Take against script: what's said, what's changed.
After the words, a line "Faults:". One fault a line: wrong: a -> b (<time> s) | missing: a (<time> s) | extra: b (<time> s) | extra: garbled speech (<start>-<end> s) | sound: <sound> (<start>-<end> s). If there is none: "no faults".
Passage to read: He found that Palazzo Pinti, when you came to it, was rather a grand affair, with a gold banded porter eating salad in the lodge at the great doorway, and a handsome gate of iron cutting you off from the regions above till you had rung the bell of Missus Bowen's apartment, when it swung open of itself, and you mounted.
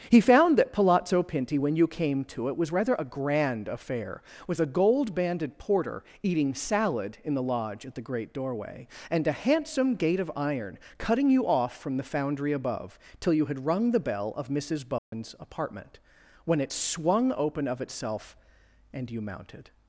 He found that Palazzo Pinti, when you came to it, was rather a grand affair, with a gold banded porter eating salad in the lodge at the great doorway, and a handsome gate of iron cutting you off from the foundry above till you had rung the bell of Missus Bowen's apartment, when it swung open of itself, and you mounted.
Faults:
wrong: regions -> foundry (12.0 s)
sound: dropout (15.0-15.1 s)